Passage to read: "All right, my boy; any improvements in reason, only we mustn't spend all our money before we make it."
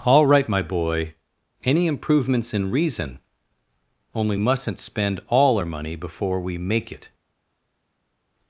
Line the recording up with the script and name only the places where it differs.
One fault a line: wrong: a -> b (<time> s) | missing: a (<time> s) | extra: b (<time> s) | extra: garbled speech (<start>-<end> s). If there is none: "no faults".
missing: we (4.3 s)